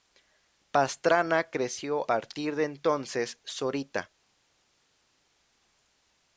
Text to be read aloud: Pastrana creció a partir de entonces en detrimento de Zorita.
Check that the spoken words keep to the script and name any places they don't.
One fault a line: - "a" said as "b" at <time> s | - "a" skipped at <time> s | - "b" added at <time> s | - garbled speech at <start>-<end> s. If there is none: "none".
- "a" skipped at 2.1 s
- "en detrimento de" skipped at 3.4 s